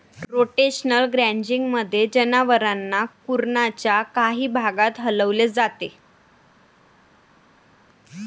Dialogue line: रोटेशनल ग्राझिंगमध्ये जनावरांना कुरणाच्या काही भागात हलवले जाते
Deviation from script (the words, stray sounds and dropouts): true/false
false